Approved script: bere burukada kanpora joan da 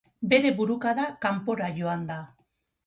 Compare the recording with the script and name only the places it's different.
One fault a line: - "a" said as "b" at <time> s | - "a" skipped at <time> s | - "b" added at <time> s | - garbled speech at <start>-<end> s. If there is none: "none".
none